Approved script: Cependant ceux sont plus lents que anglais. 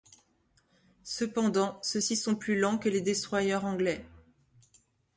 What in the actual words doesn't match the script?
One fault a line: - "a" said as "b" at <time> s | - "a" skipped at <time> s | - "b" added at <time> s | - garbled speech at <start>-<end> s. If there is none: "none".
- "ci" added at 2.0 s
- "les destroyers" added at 2.9 s